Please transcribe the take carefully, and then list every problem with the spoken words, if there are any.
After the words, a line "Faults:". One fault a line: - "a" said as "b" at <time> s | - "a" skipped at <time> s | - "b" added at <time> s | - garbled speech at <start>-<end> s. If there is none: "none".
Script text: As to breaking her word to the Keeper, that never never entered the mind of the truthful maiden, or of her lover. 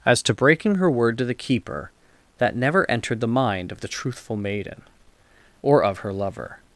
As to breaking her word to the Keeper, that never entered the mind of the truthful maiden, or of her lover.
Faults:
- "never" skipped at 2.9 s